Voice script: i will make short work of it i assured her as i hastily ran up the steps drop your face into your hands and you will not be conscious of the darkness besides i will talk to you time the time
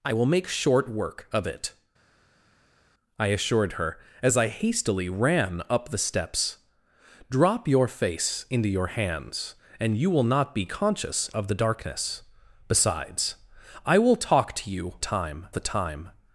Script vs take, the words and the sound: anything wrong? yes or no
no